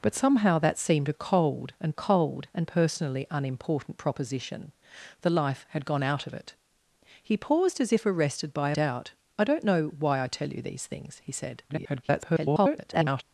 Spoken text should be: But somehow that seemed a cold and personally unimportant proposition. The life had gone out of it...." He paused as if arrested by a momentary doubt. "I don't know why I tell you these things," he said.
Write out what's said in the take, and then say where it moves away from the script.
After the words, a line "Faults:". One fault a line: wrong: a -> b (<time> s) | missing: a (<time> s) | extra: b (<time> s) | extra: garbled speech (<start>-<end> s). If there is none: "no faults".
But somehow that seemed a cold and cold and personally unimportant proposition. The life had gone out of it...." He paused as if arrested by a doubt. "I don't know why I tell you these things," he said. [garbled]
Faults:
extra: cold and (1.9 s)
missing: momentary (8.8 s)
extra: garbled speech (11.7-13.2 s)